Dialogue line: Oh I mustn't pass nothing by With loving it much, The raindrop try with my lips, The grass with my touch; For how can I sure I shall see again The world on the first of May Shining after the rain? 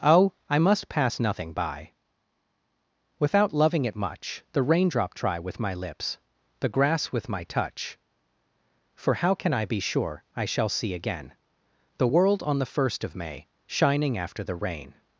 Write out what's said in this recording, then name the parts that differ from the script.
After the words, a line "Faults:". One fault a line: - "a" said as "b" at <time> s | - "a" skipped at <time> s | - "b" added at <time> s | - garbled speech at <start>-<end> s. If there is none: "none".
Oh I must pass nothing by Without loving it much, The raindrop try with my lips, The grass with my touch; For how can I be sure I shall see again The world on the first of May Shining after the rain?
Faults:
- "mustn't" said as "must" at 0.6 s
- "With" said as "Without" at 3.2 s
- "be" added at 9.6 s